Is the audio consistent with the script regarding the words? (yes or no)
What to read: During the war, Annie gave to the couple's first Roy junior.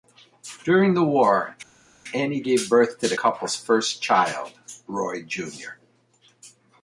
no